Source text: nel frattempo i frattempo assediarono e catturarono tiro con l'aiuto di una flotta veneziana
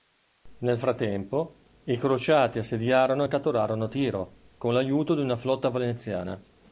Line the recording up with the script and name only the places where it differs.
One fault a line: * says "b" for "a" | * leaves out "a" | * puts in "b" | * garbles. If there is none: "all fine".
* says "crociati" for "frattempo"